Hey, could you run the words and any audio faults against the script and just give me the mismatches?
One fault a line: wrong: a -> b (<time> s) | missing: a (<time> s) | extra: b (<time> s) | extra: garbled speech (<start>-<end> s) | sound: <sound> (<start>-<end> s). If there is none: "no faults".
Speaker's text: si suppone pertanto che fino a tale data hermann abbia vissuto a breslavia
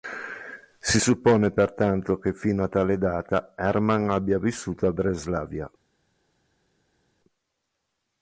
no faults